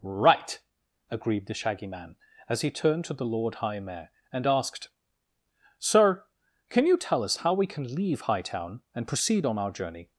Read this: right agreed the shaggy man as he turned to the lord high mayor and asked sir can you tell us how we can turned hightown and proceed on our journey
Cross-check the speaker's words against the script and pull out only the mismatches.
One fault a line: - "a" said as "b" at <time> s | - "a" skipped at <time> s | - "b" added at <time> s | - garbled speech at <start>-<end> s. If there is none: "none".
- "turned" said as "leave" at 7.9 s